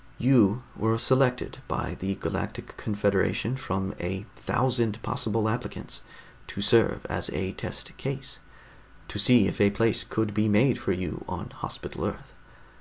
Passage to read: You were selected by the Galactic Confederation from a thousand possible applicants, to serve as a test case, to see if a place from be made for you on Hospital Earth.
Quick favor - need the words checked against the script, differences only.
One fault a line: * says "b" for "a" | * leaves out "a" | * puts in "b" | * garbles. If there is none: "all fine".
* says "could" for "from"